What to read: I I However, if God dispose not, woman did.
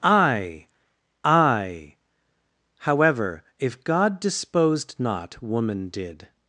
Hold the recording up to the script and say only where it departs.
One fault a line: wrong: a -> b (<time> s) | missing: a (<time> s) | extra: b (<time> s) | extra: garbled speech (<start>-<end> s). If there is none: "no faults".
wrong: dispose -> disposed (4.2 s)